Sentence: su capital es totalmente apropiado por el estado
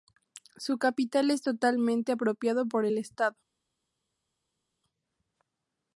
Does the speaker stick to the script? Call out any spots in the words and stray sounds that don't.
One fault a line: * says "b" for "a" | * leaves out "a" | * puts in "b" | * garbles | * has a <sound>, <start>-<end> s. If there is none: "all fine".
all fine